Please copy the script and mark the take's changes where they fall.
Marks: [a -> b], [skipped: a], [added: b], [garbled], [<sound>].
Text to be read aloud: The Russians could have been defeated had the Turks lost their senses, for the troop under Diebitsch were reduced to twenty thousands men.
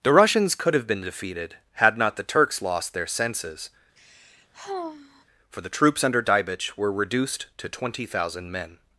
The Russians could have been defeated had [added: not] the Turks lost their senses, [sigh] for the [troop -> troops] under Diebitsch were reduced to twenty [thousands -> thousand] men.